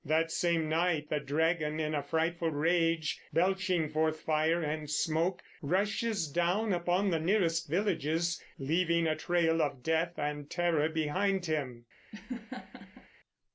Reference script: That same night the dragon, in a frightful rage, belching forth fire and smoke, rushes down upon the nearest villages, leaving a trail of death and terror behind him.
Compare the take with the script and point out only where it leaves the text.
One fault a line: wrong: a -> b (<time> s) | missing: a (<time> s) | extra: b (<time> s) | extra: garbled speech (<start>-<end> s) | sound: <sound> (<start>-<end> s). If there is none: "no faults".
sound: laugh (12.1-13.1 s)